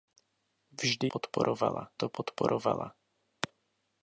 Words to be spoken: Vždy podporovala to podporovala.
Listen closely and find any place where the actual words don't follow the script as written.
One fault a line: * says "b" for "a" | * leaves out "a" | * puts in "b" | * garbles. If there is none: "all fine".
all fine